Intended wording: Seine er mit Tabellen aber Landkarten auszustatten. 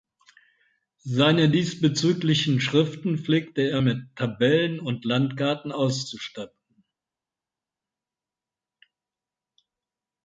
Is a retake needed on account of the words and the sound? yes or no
yes